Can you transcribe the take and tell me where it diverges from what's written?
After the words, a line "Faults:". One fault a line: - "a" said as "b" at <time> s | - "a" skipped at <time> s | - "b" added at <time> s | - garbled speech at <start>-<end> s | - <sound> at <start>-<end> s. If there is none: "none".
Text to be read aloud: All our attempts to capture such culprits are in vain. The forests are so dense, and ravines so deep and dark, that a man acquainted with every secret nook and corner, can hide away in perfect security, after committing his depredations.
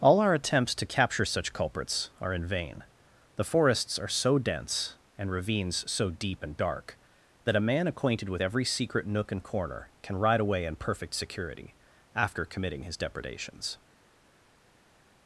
All our attempts to capture such culprits are in vain. The forests are so dense, and ravines so deep and dark, that a man acquainted with every secret nook and corner, can ride away in perfect security, after committing his depredations.
Faults:
- "hide" said as "ride" at 10.1 s